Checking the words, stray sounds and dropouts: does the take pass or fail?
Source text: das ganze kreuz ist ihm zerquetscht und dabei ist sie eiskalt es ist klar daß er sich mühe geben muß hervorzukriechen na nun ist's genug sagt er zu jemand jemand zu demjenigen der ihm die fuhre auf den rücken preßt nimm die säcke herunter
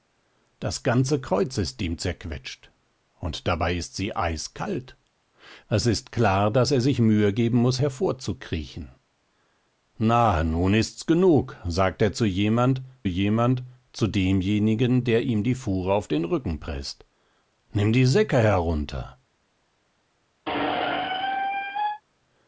fail